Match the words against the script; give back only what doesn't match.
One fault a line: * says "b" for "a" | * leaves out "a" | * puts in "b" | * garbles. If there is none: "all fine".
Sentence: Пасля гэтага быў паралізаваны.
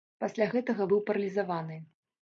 all fine